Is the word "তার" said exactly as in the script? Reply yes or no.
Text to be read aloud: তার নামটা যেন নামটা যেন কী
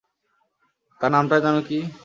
yes